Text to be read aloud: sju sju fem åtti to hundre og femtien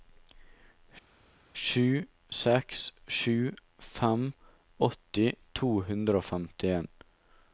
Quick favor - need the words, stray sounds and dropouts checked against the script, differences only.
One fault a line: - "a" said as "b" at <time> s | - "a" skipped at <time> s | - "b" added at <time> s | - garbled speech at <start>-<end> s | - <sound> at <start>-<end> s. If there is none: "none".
- "seks" added at 2.4 s